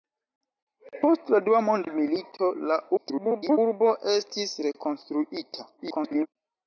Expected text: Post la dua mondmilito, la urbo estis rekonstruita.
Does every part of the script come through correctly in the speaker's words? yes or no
no